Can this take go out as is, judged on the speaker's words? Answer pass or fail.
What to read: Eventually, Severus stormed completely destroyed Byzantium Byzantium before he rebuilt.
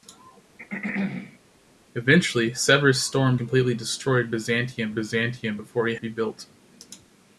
pass